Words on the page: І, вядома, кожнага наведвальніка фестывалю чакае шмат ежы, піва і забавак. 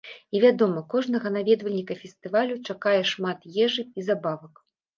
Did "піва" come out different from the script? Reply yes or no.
yes